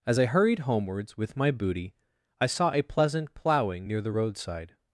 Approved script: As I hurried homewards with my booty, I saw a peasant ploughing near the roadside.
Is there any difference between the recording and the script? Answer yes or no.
yes